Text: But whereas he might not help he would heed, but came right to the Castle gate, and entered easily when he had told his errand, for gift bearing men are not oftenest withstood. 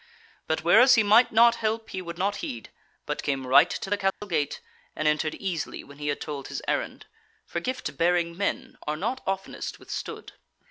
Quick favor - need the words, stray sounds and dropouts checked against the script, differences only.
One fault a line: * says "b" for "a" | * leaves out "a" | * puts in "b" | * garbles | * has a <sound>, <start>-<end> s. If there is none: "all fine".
* puts in "not"
* has a dropout, 4.1-4.2 s